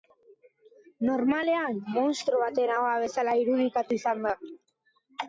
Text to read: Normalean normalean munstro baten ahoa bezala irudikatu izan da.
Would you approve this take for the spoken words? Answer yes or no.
no